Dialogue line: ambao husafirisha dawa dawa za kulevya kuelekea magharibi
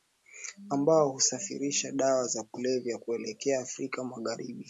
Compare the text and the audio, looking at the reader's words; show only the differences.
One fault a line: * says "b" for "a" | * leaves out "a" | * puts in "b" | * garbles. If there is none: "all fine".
* leaves out "dawa"
* puts in "afrika"